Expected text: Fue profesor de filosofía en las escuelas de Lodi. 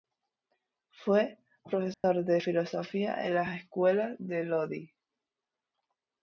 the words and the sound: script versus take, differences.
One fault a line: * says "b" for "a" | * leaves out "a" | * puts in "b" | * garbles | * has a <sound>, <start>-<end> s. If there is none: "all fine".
* has a dropout, 1.9-2.0 s